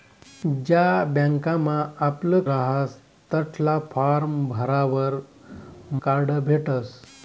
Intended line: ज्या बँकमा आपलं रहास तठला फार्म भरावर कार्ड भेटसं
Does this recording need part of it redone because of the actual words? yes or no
no